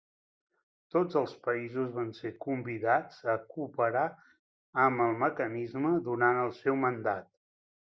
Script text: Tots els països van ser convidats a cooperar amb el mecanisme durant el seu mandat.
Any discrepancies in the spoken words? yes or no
no